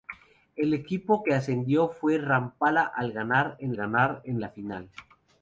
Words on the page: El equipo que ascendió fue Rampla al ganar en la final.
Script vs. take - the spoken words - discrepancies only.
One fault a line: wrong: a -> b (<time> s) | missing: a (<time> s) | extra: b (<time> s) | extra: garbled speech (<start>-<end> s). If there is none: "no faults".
extra: ganar en (3.7 s)